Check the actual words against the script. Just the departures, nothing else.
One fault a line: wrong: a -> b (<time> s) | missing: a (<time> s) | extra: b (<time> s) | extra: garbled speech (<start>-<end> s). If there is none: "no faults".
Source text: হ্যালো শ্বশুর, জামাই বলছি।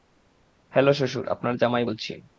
extra: আপনার (1.3 s)